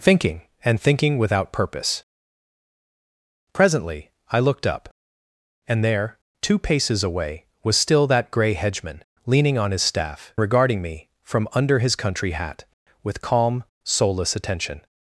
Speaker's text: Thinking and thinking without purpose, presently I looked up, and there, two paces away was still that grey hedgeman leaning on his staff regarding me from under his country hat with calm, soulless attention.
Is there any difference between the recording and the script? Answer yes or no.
no